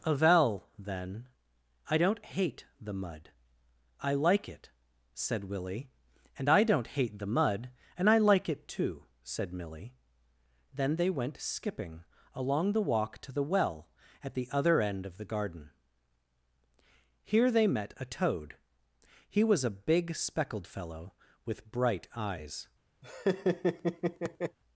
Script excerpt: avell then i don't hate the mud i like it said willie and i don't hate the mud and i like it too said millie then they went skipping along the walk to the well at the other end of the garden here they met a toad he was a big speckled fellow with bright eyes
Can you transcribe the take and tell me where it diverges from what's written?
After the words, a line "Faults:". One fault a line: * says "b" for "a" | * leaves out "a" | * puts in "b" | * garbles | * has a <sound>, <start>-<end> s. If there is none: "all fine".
avell then i don't hate the mud i like it said willie and i don't hate the mud and i like it too said millie then they went skipping along the walk to the well at the other end of the garden here they met a toad he was a big speckled fellow with bright eyes
Faults:
* has a laugh, 23.0-24.6 s